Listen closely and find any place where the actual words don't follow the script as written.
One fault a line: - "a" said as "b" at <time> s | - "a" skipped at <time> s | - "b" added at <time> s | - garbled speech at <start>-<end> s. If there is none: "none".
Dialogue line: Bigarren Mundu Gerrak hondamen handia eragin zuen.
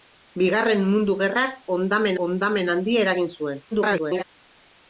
- "hondamen" added at 2.2 s
- garbled speech at 3.7-4.2 s